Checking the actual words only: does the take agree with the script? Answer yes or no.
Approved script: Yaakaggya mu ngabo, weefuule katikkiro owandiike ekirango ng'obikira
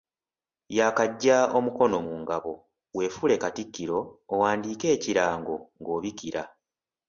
no